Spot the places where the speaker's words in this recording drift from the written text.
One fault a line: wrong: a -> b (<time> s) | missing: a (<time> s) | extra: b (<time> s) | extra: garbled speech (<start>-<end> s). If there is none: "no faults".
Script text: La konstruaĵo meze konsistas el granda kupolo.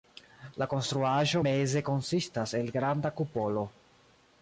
no faults